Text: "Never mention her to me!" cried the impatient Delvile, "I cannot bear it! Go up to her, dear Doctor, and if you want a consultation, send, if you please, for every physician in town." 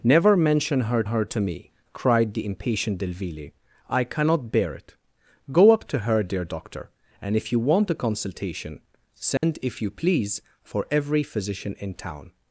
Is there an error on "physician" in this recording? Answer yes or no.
no